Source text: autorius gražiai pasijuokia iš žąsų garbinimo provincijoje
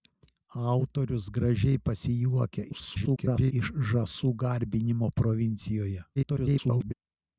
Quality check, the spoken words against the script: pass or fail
fail